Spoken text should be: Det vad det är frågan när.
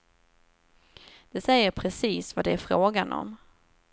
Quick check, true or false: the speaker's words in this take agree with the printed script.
false